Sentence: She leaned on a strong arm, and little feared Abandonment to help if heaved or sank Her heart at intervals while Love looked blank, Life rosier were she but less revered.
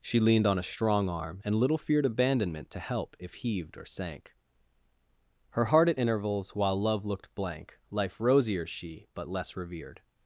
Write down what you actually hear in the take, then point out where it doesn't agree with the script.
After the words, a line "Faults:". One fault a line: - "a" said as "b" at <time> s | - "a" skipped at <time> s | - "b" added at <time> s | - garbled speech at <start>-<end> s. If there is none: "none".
She leaned on a strong arm, and little feared Abandonment to help if heaved or sank Her heart at intervals while Love looked blank, Life rosier she but less revered.
Faults:
- "were" skipped at 8.7 s